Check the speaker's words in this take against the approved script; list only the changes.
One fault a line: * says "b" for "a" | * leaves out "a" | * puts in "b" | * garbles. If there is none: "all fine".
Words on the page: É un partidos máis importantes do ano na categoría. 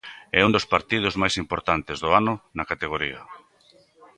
* puts in "dos"